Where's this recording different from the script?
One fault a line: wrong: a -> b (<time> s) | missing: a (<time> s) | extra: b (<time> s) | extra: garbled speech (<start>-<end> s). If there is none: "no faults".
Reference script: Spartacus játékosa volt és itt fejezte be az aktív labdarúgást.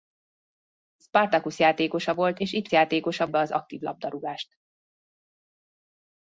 wrong: fejezte -> játékosa (2.7 s)